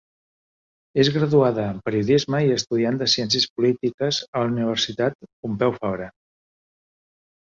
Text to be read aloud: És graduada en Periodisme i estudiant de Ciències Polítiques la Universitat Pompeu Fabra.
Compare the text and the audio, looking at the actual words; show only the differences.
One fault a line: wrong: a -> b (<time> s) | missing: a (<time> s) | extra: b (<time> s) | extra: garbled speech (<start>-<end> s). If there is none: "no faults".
extra: a (4.3 s)